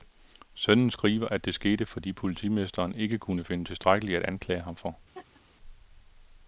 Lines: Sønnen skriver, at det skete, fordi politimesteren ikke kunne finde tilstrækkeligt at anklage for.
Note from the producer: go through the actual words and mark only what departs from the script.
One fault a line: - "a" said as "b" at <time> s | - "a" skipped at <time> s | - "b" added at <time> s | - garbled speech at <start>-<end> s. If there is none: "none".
- "ham" added at 4.6 s